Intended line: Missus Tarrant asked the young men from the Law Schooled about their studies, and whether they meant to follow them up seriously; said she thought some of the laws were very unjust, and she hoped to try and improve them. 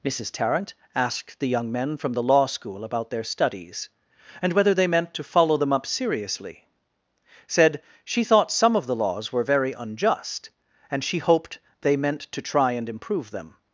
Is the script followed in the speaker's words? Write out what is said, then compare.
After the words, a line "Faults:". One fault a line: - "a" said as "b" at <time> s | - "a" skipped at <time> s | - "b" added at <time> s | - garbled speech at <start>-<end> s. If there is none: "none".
Missus Tarrant asked the young men from the Law School about their studies, and whether they meant to follow them up seriously; said she thought some of the laws were very unjust, and she hoped they meant to try and improve them.
Faults:
- "Schooled" said as "School" at 2.5 s
- "they meant" added at 11.8 s